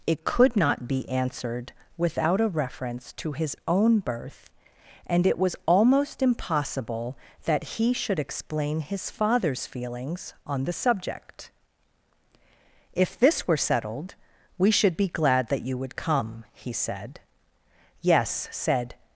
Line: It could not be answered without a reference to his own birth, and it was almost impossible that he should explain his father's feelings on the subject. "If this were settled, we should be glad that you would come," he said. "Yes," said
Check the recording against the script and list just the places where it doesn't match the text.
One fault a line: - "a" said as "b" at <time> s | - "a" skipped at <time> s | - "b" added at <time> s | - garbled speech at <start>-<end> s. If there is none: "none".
none